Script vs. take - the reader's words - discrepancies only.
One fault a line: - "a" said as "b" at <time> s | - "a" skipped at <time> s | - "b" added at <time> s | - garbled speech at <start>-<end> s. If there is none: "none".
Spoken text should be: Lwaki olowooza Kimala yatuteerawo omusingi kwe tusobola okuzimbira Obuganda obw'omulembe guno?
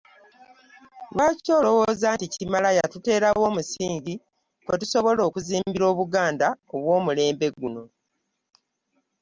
- "nti" added at 2.1 s